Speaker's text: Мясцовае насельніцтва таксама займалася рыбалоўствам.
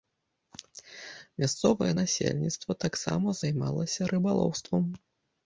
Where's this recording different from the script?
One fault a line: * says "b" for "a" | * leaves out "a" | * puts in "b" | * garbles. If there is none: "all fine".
all fine